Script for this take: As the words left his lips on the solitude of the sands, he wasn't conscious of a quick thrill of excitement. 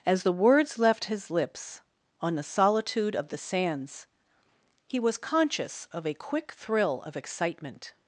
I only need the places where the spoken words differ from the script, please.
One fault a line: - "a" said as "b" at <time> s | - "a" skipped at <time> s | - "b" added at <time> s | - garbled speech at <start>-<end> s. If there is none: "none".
- "wasn't" said as "was" at 5.0 s